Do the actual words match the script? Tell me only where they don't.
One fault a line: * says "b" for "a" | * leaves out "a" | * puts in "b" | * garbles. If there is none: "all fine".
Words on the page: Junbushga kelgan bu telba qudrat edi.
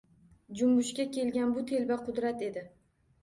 all fine